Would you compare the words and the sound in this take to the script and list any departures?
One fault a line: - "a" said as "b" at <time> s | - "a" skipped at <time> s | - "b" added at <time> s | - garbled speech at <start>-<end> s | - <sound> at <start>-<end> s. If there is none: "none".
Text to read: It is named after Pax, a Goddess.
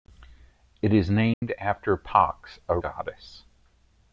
- dropout at 1.3-1.4 s